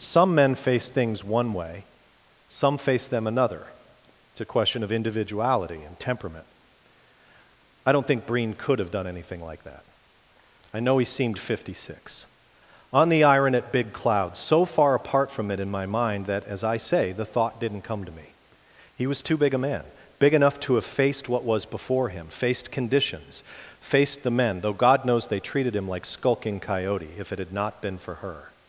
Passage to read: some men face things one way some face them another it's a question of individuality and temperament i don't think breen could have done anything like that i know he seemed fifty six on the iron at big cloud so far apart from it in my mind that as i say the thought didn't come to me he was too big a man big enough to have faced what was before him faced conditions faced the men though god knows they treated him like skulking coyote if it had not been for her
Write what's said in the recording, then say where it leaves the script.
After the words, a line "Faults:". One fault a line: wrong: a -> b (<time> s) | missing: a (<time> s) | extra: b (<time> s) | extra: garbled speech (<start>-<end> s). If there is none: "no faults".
some men face things one way some face them another it's a question of individuality and temperament i don't think breen could have done anything like that i know he seemed fifty six on the iron at big cloud so far apart from it in my mind that as i say the thought didn't come to me he was too big a man big enough to have faced what was before him faced conditions faced the men though god knows they treated him like skulking coyote if it had not been for her
Faults:
no faults